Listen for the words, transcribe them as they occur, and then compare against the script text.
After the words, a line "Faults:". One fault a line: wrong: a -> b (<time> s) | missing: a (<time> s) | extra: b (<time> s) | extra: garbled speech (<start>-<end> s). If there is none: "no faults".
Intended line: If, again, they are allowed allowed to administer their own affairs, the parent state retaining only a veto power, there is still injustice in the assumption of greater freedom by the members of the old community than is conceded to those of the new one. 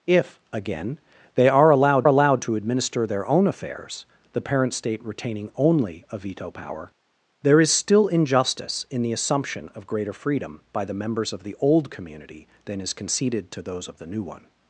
If, again, they are allowed allowed to administer their own affairs, the parent state retaining only a veto power, there is still injustice in the assumption of greater freedom by the members of the old community than is conceded to those of the new one.
Faults:
no faults